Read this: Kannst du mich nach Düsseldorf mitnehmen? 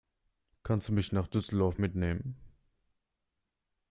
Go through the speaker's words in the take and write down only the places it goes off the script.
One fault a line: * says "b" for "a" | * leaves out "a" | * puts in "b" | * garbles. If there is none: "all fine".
all fine